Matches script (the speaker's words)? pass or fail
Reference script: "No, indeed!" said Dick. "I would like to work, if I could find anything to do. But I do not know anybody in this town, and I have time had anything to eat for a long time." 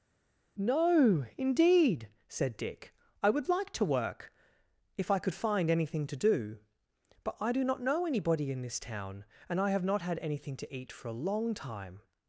fail